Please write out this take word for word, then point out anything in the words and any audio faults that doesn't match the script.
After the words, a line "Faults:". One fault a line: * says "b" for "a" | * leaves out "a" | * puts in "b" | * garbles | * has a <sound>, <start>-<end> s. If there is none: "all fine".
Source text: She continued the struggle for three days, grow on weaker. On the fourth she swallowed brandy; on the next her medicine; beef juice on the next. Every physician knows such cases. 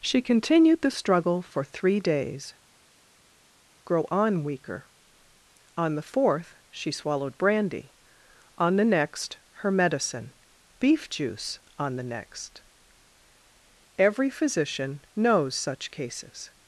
She continued the struggle for three days, grow on weaker. On the fourth she swallowed brandy; on the next her medicine; beef juice on the next. Every physician knows such cases.
Faults:
all fine